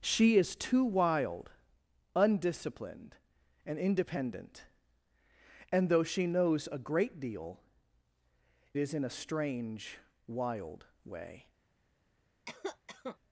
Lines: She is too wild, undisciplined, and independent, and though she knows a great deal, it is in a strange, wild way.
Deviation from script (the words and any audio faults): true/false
true